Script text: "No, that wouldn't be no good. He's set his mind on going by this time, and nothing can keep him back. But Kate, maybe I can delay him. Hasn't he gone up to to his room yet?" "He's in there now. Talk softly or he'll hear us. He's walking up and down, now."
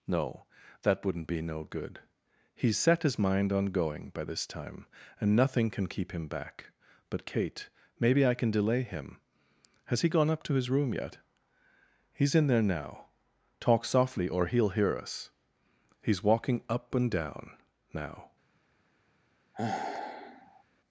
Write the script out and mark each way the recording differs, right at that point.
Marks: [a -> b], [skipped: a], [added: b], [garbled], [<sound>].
"No, that wouldn't be no good. He's set his mind on going by this time, and nothing can keep him back. But Kate, maybe I can delay him. [Hasn't -> Has] he gone up to [skipped: to] his room yet?" "He's in there now. Talk softly or he'll hear us. He's walking up and down, now." [sigh]